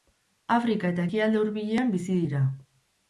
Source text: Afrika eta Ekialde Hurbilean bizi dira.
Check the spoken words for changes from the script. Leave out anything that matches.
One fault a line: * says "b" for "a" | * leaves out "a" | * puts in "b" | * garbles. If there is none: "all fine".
all fine